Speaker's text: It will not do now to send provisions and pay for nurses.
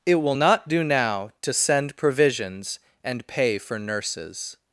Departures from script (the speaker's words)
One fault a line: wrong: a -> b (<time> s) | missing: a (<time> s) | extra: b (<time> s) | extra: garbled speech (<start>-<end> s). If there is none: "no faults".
no faults